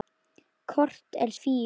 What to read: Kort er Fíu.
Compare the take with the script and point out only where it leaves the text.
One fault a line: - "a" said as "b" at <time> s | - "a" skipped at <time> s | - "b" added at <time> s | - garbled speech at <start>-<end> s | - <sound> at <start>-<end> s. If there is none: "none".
none